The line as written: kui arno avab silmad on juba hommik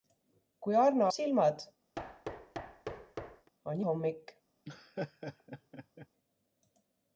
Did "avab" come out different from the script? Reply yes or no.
yes